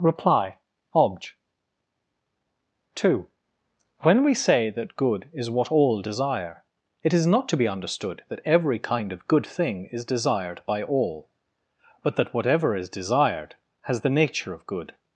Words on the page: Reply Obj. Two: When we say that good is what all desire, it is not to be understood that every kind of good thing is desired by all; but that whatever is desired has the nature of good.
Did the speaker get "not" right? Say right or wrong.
right